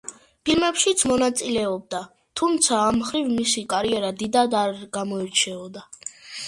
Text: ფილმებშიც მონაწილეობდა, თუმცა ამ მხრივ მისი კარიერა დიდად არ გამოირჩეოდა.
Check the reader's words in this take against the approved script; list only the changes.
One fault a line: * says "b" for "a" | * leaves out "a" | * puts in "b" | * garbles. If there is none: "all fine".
all fine